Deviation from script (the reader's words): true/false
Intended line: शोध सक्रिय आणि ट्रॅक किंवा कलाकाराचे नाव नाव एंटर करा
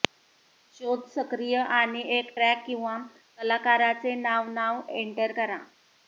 true